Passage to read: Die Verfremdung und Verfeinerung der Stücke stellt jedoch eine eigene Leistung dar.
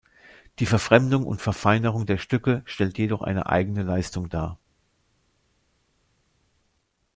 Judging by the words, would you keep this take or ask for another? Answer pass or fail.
pass